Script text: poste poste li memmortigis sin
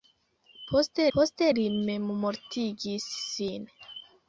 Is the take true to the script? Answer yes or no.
yes